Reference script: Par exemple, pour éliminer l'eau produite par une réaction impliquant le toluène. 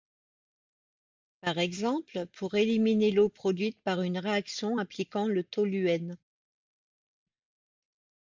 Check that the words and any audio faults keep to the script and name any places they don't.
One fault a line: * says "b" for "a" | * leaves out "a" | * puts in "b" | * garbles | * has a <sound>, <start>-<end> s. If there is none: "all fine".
all fine